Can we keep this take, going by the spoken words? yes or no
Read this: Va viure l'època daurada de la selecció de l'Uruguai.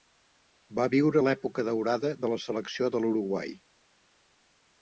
yes